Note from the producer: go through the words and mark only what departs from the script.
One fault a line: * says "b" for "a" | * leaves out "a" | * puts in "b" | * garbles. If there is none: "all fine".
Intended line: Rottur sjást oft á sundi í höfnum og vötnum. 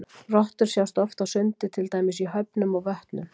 * puts in "til dæmis"